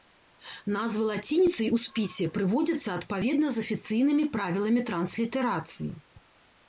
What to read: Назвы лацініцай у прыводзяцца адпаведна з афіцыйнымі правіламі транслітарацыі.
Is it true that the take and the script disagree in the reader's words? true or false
true